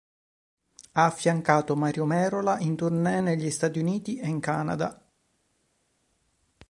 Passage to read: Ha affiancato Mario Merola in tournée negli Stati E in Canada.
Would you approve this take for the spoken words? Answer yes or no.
no